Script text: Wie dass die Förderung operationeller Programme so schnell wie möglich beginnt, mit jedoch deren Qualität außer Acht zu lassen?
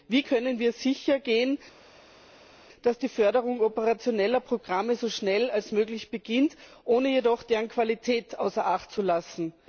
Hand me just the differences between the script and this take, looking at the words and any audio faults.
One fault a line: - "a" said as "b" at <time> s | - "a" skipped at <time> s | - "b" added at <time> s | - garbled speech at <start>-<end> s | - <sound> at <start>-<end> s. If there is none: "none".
- "können wir sichergehen" added at 0.2 s
- "mit" said as "ohne" at 6.8 s